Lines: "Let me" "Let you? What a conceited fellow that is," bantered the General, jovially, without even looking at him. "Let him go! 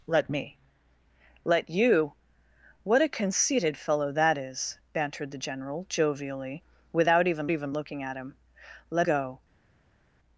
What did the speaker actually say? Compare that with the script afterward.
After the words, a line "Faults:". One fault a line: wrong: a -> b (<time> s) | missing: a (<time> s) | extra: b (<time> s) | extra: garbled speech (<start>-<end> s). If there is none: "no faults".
"Let me" "Let you? What a conceited fellow that is," bantered the General, jovially, without even even looking at him. "Let go!
Faults:
extra: even (7.5 s)
missing: him (9.1 s)